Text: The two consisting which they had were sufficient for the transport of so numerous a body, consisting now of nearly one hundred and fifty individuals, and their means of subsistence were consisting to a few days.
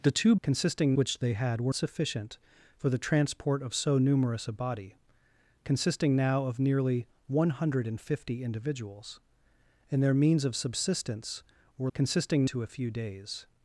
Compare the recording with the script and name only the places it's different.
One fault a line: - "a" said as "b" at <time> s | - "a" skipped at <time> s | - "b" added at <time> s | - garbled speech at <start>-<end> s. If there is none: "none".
none